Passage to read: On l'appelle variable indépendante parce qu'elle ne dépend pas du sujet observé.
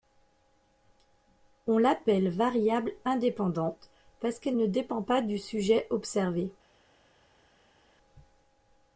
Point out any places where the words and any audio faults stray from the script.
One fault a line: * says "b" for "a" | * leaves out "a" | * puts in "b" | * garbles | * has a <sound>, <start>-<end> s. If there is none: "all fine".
all fine